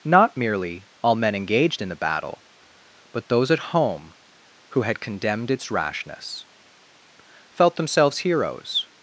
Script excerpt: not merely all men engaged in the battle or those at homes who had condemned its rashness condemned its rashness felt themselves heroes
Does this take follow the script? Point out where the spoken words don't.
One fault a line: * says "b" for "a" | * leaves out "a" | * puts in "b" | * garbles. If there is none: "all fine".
* says "but" for "or"
* says "home" for "homes"
* leaves out "condemned its rashness"